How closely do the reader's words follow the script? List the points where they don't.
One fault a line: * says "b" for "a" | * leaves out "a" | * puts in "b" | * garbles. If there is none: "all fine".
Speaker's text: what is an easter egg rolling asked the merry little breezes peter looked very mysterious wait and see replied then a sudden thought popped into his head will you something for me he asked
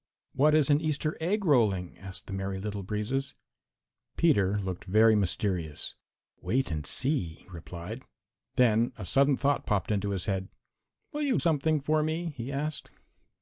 all fine